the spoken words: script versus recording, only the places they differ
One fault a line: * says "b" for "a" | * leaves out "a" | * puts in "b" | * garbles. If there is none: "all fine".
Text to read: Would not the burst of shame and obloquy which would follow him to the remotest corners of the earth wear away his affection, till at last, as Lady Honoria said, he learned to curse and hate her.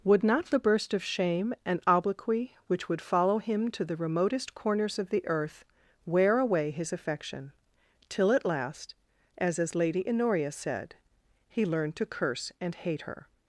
* puts in "as"